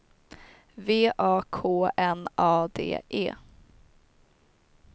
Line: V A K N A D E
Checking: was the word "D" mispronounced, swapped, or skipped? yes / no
no